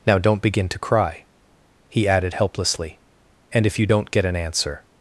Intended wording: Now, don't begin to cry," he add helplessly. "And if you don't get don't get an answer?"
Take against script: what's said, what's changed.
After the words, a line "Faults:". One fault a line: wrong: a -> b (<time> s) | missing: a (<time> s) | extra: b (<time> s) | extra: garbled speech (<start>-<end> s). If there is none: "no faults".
Now, don't begin to cry," he added helplessly. "And if you don't get an answer?"
Faults:
wrong: add -> added (2.1 s)
missing: don't get (4.2 s)